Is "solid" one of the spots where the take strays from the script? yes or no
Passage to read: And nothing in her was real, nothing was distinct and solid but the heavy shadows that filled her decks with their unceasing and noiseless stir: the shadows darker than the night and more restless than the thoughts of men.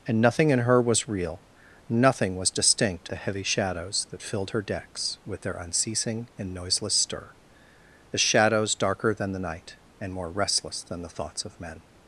yes